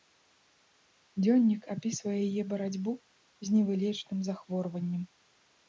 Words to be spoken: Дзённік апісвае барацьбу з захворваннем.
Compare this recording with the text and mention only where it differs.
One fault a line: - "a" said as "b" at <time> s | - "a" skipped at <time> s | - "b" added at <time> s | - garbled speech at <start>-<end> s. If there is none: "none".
- "яе" added at 2.3 s
- "невылечным" added at 3.6 s